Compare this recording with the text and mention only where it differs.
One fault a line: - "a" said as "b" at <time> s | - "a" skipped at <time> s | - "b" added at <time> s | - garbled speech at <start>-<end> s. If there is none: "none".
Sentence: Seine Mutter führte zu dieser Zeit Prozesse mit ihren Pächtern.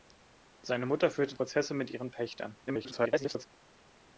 - "zu dieser Zeit" skipped at 1.4 s
- garbled speech at 2.7-3.5 s